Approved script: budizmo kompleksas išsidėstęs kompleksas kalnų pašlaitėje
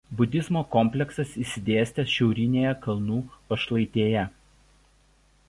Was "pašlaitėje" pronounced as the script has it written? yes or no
yes